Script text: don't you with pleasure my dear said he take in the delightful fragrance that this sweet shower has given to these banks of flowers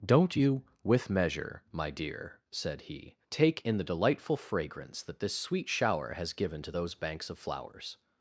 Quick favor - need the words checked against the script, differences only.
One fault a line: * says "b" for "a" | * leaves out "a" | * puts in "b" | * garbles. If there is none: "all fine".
* says "measure" for "pleasure"
* says "those" for "these"